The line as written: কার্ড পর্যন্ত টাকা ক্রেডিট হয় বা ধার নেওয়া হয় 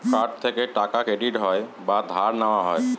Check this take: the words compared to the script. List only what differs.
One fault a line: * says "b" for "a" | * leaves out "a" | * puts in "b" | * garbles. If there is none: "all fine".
* says "থেকে" for "পর্যন্ত"